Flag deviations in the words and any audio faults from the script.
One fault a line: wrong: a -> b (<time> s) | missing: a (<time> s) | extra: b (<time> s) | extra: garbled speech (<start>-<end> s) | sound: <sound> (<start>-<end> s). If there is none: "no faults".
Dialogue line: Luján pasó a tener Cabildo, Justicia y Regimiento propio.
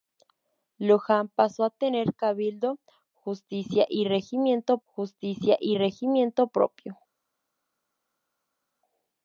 extra: Justicia y Regimiento (4.8 s)